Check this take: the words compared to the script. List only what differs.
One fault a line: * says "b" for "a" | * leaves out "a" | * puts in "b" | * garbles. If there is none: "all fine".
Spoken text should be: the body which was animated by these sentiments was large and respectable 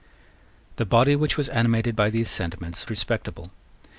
* leaves out "was large and"